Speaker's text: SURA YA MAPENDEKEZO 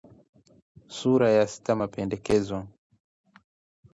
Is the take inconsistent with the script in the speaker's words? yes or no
yes